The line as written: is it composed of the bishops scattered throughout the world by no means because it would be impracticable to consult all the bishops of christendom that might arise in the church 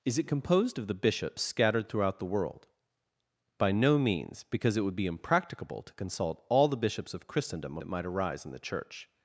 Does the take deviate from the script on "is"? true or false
false